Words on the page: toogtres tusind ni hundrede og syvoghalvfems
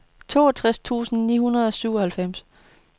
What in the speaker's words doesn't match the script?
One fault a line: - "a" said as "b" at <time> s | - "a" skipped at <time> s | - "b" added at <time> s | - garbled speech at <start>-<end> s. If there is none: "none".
none